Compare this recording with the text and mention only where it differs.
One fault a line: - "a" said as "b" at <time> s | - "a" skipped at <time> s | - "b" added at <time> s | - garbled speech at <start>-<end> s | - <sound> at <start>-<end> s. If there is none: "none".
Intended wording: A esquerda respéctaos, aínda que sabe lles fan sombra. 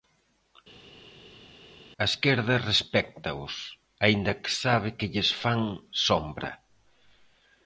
- "que" added at 5.0 s